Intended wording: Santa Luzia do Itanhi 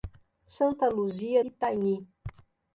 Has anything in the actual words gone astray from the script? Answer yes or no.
yes